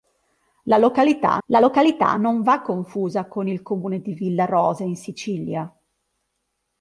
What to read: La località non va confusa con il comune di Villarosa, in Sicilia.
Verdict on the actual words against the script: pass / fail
fail